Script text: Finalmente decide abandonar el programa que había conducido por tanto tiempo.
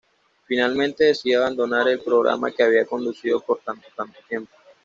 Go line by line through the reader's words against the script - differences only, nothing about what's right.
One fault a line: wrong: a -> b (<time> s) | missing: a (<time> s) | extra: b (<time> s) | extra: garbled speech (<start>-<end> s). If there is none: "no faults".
extra: tanto (3.9 s)